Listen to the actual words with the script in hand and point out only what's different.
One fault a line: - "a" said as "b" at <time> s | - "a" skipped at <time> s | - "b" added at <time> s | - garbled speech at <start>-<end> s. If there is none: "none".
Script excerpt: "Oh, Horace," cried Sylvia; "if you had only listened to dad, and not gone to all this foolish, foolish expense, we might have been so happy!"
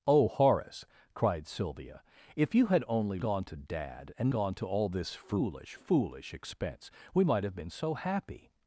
- "listened" said as "gone" at 3.2 s
- "not" skipped at 4.3 s